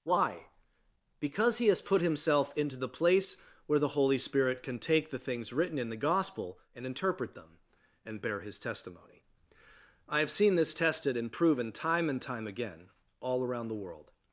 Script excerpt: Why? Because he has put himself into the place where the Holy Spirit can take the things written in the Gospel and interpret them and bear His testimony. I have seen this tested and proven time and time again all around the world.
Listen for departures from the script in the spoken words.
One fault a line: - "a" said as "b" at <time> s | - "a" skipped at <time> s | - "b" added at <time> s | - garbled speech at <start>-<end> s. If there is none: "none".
none